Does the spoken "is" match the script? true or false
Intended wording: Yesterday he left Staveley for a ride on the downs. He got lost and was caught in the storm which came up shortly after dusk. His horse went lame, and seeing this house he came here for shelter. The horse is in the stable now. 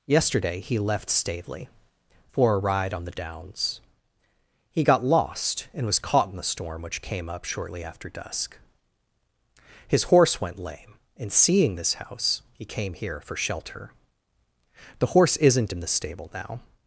false